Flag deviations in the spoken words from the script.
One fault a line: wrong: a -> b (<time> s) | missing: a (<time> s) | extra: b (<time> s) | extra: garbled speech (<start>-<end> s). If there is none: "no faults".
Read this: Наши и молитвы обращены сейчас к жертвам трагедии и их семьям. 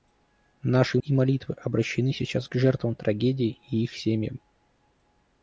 no faults